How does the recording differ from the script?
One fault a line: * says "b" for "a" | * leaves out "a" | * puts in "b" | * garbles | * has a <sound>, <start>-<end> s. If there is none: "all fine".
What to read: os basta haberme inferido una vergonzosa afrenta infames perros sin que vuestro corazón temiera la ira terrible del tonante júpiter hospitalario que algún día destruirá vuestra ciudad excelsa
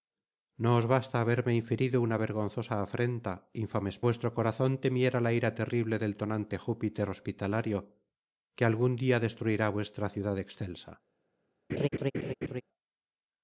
* leaves out "perros sin que"
* has a laugh, 11.7-12.6 s